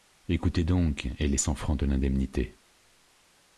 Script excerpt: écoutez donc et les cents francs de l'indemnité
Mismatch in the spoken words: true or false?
false